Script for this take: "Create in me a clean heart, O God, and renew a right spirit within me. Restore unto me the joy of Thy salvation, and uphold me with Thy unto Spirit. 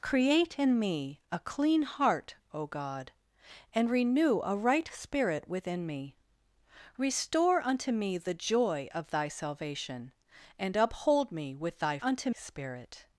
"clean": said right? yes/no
yes